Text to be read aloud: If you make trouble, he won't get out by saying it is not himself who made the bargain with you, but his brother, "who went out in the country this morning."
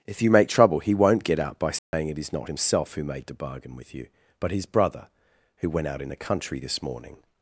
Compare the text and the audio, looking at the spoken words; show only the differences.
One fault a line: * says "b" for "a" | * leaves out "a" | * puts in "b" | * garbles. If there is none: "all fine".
all fine